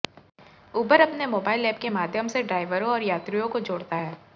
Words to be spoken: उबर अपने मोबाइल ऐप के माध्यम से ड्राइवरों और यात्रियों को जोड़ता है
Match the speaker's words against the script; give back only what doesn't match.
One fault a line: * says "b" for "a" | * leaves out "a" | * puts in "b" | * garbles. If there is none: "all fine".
all fine